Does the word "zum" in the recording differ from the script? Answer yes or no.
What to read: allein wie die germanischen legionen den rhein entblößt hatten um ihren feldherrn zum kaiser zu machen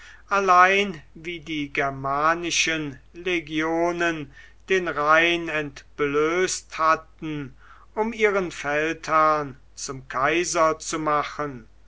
no